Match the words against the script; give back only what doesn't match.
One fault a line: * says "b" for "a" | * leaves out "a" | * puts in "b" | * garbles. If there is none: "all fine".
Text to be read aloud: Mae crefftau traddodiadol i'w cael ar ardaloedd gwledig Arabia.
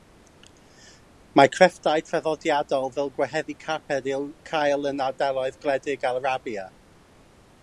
* puts in "fel gwehyddu carped"
* says "yn" for "ar"